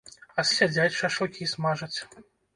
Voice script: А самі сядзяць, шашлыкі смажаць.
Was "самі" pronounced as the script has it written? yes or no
no